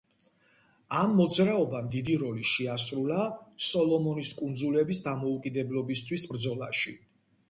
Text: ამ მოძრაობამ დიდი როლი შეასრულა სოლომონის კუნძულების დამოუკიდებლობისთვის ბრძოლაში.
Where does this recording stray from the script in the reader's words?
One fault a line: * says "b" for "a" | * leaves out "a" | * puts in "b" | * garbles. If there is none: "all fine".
all fine